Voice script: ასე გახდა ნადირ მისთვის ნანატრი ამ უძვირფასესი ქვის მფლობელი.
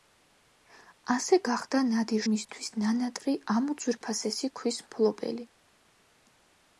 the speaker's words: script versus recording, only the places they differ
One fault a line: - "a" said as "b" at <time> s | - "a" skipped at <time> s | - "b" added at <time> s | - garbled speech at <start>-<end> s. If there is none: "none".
none